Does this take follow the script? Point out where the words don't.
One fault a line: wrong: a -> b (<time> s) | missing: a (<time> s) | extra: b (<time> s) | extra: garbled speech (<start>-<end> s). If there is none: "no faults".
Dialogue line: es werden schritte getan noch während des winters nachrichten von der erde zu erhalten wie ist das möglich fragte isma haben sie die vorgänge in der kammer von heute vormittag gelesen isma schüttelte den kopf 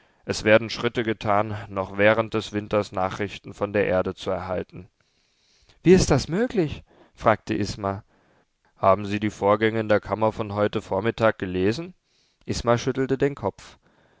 no faults